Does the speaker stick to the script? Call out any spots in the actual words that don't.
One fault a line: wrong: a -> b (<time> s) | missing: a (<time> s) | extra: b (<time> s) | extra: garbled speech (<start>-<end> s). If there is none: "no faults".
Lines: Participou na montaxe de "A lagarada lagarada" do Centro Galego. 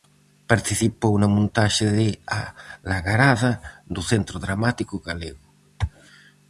missing: lagarada (3.5 s)
extra: Dramático (4.5 s)